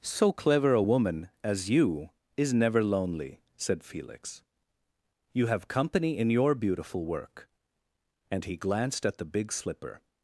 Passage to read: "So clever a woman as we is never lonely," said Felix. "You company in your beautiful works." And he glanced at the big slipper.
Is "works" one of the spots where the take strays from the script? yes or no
yes